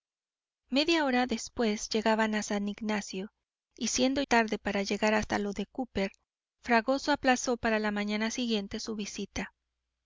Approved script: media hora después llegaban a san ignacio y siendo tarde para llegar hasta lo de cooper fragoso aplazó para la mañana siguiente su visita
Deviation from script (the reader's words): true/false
false